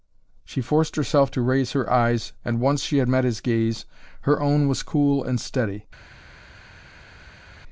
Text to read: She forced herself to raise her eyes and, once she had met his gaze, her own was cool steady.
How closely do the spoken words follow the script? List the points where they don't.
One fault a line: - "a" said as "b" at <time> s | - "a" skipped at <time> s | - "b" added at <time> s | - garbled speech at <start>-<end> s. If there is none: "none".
- "and" added at 5.2 s